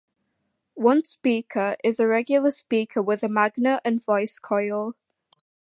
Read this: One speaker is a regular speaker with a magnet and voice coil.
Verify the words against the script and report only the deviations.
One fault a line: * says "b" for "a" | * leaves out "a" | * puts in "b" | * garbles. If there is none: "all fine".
all fine